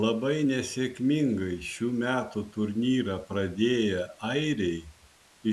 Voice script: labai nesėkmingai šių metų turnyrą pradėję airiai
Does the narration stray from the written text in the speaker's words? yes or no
no